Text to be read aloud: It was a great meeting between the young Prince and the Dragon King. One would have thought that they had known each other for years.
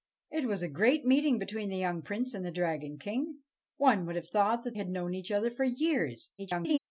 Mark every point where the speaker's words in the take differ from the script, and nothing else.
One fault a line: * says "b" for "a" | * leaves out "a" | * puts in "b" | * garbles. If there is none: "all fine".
* leaves out "they"
* garbles